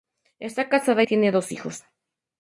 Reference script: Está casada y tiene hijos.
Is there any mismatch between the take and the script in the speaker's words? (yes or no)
yes